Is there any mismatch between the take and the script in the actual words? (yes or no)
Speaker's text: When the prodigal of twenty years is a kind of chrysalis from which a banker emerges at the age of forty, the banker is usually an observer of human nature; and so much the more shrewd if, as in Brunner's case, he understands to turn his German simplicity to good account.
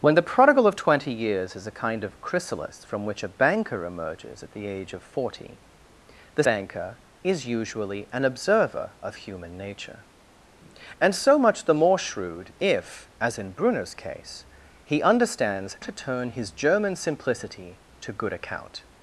no